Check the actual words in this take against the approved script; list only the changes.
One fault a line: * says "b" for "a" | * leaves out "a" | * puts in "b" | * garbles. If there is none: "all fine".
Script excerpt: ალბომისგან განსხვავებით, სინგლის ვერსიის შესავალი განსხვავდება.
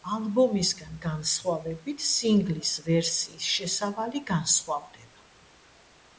all fine